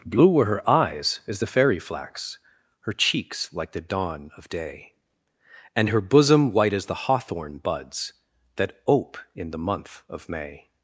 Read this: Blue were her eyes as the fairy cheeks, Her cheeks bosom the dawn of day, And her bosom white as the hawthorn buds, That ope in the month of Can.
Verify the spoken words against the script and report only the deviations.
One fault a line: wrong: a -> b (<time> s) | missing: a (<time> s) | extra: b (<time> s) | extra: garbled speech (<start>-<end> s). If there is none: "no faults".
wrong: cheeks -> flax (1.8 s)
wrong: bosom -> like (3.5 s)
wrong: Can -> May (10.3 s)